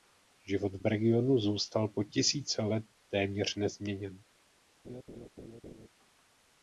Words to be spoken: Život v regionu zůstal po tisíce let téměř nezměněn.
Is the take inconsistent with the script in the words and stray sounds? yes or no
yes